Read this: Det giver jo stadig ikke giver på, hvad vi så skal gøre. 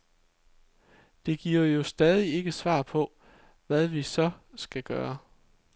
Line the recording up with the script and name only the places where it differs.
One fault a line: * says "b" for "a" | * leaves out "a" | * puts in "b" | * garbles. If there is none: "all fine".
* says "svar" for "giver"